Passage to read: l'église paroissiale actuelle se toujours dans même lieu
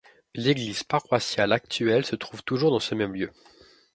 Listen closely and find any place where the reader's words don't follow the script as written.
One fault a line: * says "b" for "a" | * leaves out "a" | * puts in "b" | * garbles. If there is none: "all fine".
* puts in "trouve"
* puts in "ce"